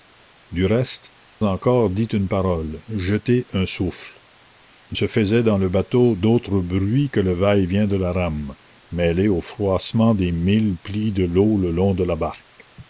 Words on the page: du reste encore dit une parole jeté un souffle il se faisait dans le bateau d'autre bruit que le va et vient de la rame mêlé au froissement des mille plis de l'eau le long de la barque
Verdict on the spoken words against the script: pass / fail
pass